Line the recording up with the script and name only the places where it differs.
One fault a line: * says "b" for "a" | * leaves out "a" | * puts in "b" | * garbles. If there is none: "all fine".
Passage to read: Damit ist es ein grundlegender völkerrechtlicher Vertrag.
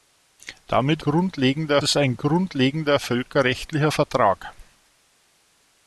* says "grundlegender" for "ist"